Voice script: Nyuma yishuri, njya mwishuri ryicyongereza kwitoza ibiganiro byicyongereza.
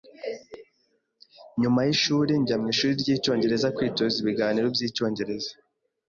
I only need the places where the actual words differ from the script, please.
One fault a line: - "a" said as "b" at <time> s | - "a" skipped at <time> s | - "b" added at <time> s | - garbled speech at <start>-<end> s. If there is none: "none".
none